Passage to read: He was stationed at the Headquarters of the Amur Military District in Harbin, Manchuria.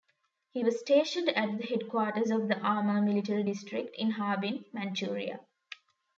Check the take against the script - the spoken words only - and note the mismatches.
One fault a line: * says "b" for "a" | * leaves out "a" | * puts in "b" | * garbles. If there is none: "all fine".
all fine